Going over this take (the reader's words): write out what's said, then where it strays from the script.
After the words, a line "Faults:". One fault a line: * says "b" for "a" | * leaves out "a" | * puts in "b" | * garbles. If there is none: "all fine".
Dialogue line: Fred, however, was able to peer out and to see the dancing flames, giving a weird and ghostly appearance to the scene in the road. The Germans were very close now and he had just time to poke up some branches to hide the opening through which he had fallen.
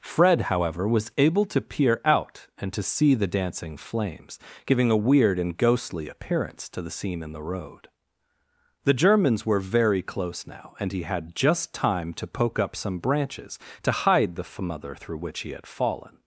Fred, however, was able to peer out and to see the dancing flames, giving a weird and ghostly appearance to the scene in the road. The Germans were very close now and he had just time to poke up some branches to hide the fmother through which he had fallen.
Faults:
* says "fmother" for "opening"